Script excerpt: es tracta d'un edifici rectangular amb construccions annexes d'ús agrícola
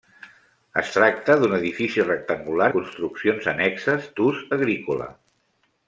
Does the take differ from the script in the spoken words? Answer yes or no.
yes